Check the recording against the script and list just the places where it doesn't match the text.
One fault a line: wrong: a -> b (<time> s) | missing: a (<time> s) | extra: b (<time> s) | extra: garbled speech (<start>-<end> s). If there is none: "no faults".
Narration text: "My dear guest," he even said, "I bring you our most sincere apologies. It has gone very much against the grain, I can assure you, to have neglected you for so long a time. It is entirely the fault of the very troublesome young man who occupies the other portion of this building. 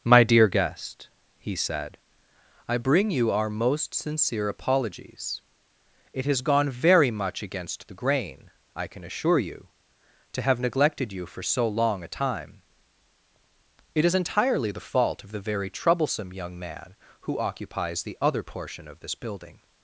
missing: even (1.6 s)